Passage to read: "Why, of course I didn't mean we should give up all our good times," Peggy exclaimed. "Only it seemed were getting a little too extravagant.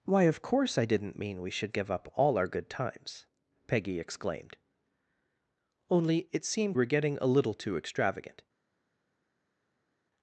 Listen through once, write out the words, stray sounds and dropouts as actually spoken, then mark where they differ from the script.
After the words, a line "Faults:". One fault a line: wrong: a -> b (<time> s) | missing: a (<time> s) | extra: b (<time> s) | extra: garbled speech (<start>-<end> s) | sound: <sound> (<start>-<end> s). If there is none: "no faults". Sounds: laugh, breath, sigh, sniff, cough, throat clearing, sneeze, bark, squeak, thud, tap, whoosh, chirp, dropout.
"Why, of course I didn't mean we should give up all our good times," Peggy exclaimed. "Only it seemed were getting a little too extravagant.
Faults:
no faults